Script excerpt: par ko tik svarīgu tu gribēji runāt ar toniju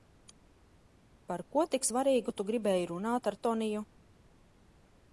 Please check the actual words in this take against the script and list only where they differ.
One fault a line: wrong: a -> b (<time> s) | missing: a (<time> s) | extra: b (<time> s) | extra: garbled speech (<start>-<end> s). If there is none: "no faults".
no faults